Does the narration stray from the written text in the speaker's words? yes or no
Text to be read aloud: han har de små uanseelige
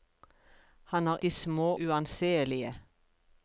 no